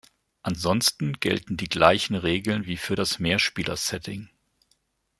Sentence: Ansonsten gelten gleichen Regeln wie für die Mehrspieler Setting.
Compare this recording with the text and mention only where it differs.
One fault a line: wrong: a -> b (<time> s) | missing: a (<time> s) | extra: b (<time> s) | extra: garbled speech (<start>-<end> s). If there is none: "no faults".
extra: die (1.6 s)
wrong: die -> das (2.9 s)